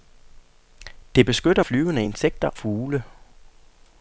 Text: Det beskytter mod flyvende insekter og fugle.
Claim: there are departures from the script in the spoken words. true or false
true